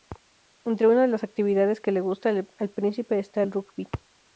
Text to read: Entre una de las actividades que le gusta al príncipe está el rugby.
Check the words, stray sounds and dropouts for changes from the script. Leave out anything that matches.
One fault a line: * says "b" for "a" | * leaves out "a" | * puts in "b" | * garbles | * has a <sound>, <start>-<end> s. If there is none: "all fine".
all fine